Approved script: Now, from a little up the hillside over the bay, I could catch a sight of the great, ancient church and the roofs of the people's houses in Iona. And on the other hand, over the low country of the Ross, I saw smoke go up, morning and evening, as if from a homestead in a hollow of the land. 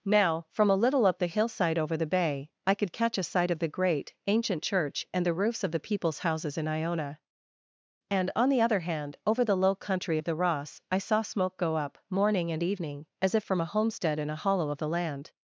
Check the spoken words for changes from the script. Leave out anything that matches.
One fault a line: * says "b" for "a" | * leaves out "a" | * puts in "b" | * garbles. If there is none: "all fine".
all fine